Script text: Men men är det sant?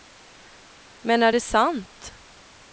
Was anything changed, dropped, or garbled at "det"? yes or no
no